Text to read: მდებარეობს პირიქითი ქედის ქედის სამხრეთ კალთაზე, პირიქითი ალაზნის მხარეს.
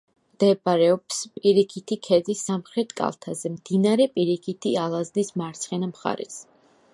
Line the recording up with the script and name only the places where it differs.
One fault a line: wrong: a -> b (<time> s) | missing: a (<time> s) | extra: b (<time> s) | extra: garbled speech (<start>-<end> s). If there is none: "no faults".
missing: ქედის (2.4 s)
extra: მდინარე (3.5 s)
extra: მარცხენა (5.4 s)